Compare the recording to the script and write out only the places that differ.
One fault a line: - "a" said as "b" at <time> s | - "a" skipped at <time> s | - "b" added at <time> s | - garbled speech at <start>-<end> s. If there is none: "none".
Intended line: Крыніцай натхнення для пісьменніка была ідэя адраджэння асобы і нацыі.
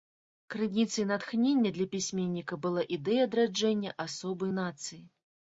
none